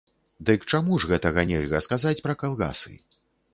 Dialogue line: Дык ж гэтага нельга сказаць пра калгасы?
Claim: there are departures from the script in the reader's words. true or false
true